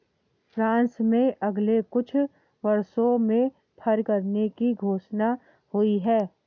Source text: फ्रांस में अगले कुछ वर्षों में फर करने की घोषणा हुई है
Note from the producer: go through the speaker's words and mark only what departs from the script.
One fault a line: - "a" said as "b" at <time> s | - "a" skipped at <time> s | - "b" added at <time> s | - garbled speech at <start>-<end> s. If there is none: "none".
none